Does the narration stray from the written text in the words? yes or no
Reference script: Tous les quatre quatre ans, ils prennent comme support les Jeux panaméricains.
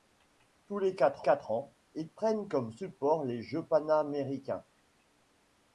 no